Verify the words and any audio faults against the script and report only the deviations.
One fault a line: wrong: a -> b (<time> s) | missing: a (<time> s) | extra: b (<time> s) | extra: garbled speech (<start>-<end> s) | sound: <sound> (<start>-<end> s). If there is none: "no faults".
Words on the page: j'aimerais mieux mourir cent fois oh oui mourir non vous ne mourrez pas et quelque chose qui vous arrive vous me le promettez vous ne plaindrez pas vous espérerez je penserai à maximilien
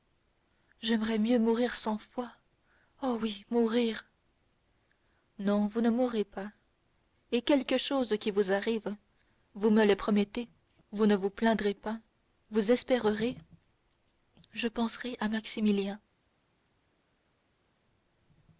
extra: vous (11.2 s)